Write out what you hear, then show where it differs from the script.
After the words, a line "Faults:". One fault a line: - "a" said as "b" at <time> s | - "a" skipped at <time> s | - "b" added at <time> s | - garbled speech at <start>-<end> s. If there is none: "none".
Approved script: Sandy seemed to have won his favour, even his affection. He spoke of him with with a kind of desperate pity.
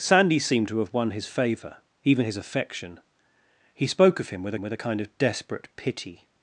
Sandy seemed to have won his favour, even his affection. He spoke of him with with a kind of desperate pity.
Faults:
none